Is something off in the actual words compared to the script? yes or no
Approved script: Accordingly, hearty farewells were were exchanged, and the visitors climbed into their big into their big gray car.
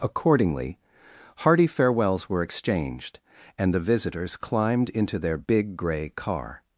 yes